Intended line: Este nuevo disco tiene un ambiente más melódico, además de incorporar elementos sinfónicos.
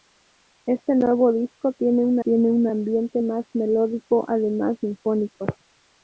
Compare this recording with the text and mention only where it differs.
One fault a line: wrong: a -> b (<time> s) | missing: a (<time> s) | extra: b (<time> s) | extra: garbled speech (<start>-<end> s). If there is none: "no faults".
extra: tiene un (2.2 s)
missing: de incorporar elementos (4.8 s)